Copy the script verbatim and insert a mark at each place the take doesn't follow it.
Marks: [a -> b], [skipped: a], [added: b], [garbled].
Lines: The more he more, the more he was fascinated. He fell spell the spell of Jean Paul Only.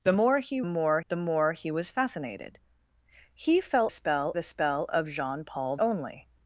The more he more, the more he was fascinated. He fell spell the spell of Jean Paul Only.